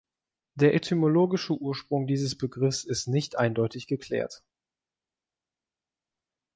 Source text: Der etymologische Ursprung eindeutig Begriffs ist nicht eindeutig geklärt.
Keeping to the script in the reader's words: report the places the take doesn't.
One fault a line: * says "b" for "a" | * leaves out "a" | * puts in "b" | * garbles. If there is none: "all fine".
* says "dieses" for "eindeutig"